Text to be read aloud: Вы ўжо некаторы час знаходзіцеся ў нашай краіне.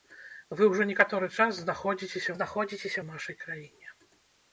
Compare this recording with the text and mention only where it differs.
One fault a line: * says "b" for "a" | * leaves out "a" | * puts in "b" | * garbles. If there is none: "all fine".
* puts in "знаходзіцеся"